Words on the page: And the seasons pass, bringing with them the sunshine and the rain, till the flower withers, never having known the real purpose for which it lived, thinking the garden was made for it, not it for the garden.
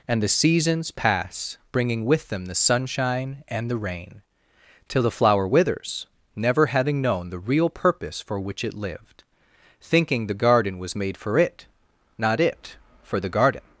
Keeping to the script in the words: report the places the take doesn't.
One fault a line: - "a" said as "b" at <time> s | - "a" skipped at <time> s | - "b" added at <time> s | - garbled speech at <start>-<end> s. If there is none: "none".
none